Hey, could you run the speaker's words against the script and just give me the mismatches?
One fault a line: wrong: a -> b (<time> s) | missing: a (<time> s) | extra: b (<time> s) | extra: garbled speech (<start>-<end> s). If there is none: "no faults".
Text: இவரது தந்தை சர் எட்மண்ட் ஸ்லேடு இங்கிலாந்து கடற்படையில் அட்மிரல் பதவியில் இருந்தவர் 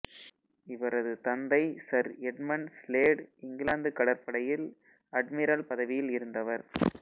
no faults